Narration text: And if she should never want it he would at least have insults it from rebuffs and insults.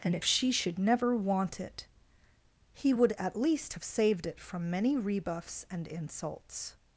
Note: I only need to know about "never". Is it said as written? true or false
true